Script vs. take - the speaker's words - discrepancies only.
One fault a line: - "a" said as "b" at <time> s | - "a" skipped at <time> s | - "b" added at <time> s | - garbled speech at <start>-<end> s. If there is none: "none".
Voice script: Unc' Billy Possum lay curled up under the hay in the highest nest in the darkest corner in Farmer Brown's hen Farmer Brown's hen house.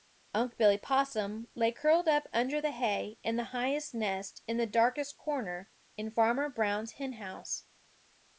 - "Farmer Brown's hen" skipped at 7.1 s